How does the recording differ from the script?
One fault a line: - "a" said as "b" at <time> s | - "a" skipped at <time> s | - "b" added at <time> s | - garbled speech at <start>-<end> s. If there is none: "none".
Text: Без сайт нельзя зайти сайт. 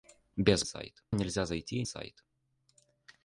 none